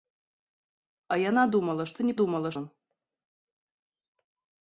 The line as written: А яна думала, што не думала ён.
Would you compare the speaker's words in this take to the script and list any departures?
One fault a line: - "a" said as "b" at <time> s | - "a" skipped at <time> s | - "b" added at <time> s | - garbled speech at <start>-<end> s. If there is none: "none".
none